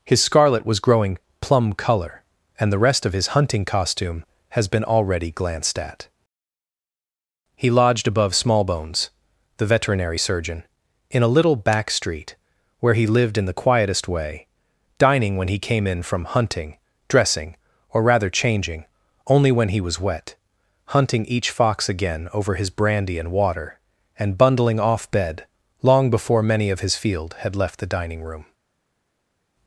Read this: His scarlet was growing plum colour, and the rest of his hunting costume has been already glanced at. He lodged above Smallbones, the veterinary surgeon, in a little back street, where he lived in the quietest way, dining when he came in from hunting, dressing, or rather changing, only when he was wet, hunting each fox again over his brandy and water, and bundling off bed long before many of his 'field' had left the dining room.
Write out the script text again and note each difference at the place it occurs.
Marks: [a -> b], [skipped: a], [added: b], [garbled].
His scarlet was growing plum colour, and the rest of his hunting costume has been already glanced at. He lodged above Smallbones, the veterinary surgeon, in a little back street, where he lived in the quietest way, dining when he came in from hunting, dressing, or rather changing, only when he was wet, hunting each fox again over his brandy and water, and bundling off bed long before many of his 'field' had left the dining room.